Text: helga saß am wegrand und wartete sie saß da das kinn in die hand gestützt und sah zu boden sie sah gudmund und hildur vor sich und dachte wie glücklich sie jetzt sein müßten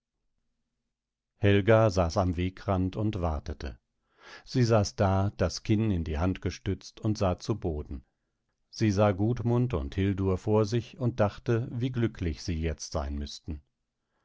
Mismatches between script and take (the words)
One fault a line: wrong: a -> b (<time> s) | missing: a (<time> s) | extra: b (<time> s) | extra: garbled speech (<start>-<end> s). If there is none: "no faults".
no faults